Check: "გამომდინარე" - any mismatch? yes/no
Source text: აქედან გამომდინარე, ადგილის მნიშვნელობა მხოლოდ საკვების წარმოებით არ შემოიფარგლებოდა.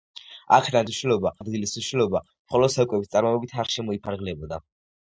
yes